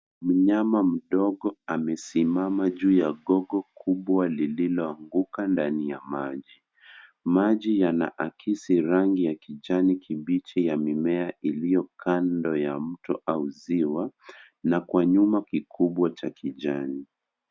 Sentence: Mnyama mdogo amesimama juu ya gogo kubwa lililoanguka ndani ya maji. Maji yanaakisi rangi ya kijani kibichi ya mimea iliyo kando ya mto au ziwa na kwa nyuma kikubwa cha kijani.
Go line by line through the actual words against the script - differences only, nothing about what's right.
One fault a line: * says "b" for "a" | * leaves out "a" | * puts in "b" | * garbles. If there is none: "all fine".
all fine